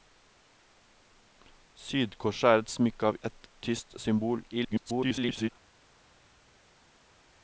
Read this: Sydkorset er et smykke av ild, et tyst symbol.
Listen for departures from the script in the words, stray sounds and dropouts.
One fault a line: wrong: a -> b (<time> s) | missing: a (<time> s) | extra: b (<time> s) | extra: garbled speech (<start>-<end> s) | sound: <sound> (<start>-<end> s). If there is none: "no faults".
missing: ild (3.2 s)
extra: garbled speech (4.5-5.5 s)